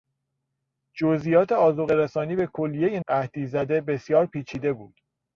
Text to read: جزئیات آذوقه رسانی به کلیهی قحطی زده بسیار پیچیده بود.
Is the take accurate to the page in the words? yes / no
yes